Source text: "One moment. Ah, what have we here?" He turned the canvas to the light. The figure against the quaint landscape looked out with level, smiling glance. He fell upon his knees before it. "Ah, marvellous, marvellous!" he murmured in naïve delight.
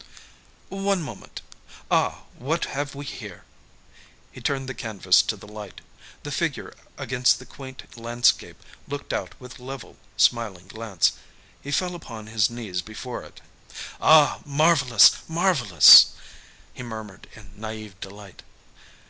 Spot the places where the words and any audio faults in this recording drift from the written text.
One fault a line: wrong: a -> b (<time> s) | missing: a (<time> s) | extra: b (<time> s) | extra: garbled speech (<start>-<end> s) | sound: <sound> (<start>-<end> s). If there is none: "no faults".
no faults